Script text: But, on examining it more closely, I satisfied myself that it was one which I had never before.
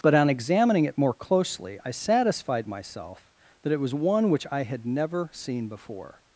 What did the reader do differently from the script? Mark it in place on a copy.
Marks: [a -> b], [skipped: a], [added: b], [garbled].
But, on examining it more closely, I satisfied myself that it was one which I had never [added: seen] before.